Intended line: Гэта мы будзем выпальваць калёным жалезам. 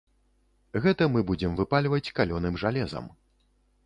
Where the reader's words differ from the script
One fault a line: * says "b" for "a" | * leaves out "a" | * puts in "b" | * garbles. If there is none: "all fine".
all fine